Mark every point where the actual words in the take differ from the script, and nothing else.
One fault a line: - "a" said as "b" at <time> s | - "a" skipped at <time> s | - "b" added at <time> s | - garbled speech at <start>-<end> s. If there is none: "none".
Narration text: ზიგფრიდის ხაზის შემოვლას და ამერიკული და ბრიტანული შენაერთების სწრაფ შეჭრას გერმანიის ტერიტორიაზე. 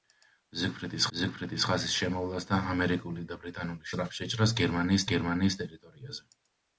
- "ზიგფრიდის" added at 1.2 s
- "შენაერთების" skipped at 3.9 s
- "გერმანიის" added at 5.1 s